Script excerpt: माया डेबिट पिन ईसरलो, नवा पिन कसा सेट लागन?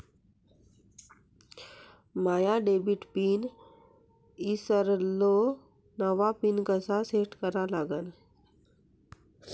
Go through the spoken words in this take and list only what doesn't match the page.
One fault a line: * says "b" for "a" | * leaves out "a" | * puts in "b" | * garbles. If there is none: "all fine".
* puts in "करा"